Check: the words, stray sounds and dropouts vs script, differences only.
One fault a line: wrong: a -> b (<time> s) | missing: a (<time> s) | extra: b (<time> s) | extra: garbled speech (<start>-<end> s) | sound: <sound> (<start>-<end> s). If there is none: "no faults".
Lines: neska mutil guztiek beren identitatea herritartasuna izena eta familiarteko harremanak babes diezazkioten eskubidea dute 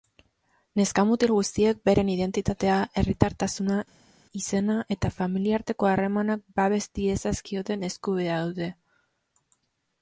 no faults